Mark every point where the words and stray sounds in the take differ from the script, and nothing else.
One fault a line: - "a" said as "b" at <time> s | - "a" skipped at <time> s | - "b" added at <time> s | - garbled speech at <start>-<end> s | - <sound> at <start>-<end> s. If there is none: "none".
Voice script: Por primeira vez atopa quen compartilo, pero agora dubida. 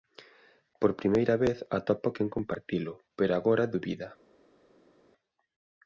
none